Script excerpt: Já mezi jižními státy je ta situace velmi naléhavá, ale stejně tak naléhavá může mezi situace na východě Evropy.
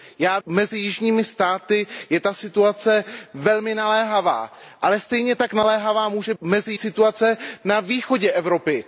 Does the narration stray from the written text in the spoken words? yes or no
no